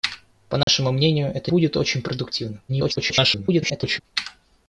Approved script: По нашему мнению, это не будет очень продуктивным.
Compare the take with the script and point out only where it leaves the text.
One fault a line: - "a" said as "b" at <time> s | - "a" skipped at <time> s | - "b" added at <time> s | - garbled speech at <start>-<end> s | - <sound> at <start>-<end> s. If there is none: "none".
- dropout at 0.6-0.7 s
- "не" skipped at 1.5 s
- garbled speech at 2.7-4.0 s